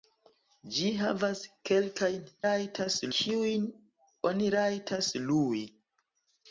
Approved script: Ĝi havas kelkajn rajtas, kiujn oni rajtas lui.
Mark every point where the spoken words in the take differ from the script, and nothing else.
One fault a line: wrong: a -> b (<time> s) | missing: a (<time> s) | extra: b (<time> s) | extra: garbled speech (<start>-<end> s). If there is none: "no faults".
no faults